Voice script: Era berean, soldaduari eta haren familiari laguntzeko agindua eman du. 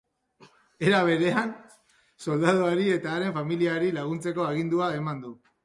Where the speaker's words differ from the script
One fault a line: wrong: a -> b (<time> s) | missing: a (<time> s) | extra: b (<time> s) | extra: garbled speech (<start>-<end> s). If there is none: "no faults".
no faults